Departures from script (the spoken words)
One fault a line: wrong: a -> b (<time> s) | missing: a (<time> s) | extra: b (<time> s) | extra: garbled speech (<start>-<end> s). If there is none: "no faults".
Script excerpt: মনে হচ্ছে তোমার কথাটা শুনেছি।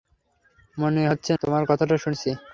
no faults